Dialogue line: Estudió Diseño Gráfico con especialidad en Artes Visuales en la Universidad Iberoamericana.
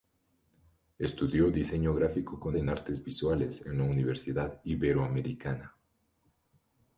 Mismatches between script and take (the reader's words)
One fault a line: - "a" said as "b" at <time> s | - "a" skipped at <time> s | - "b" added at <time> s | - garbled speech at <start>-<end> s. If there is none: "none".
- "especialidad" skipped at 2.6 s